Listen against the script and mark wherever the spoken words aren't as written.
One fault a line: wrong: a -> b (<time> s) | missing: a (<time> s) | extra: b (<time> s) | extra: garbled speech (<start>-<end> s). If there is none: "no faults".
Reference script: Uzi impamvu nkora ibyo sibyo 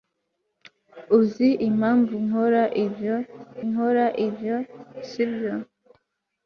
extra: nkora ibyo (3.7 s)